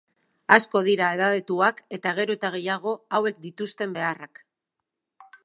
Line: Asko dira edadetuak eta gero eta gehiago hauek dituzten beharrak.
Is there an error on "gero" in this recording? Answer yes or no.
no